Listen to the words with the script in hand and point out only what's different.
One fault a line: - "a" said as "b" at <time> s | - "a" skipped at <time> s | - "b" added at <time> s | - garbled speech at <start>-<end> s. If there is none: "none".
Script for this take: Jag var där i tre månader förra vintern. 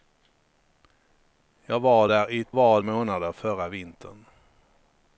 - "tre" said as "var" at 2.5 s